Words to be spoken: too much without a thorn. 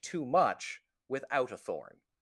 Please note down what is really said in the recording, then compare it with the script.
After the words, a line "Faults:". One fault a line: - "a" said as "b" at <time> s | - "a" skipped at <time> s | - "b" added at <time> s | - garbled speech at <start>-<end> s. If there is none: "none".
too much without a thorn.
Faults:
none